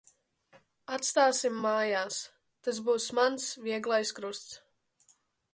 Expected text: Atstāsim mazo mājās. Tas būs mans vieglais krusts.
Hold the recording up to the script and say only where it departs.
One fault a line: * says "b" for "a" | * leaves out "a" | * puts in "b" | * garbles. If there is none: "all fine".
* leaves out "mazo"